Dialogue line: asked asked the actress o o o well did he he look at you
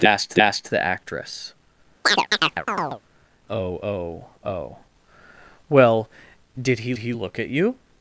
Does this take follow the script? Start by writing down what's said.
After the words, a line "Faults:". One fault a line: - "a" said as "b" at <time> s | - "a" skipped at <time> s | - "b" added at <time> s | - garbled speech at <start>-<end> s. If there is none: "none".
asked asked the actress o o o well did he he look at you
Faults:
none